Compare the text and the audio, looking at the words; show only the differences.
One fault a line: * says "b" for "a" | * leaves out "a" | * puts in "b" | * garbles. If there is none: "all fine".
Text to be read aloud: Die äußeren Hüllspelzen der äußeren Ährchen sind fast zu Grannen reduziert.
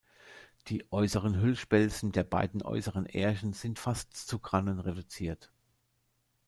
* puts in "beiden"